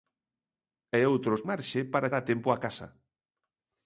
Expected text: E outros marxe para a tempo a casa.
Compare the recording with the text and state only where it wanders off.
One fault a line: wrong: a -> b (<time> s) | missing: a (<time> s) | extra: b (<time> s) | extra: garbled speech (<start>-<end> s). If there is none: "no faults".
no faults